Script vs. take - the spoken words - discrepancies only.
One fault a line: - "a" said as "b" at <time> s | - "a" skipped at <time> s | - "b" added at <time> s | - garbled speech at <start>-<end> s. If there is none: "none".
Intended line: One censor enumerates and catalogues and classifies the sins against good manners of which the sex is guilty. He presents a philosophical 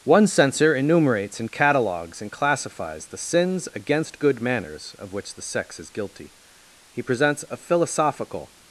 none